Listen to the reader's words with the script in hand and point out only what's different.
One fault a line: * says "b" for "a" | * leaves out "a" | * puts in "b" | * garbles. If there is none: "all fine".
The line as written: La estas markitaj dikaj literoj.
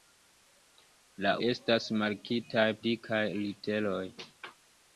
all fine